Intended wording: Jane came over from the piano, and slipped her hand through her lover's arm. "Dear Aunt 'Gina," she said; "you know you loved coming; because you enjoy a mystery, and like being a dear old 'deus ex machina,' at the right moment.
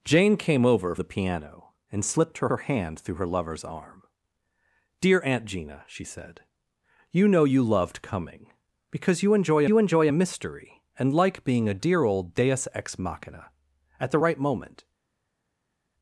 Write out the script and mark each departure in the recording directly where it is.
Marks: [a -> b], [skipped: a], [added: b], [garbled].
Jane came over [skipped: from] the piano, and slipped her [added: her] hand through her lover's arm. "Dear Aunt 'Gina," she said; "you know you loved coming; because you enjoy [added: you enjoy] a mystery, and like being a dear old 'deus ex machina,' at the right moment.